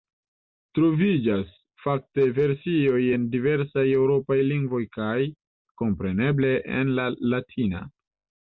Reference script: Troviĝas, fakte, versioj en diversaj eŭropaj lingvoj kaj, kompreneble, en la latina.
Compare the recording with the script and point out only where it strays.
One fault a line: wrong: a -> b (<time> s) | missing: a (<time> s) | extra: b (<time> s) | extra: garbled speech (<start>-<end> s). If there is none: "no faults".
no faults